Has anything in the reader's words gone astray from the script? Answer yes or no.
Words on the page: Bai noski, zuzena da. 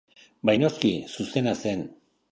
yes